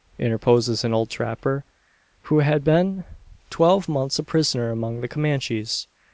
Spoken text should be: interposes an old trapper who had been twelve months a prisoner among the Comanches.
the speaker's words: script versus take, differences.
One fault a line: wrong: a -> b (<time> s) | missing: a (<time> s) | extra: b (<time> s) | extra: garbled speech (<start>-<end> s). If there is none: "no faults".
no faults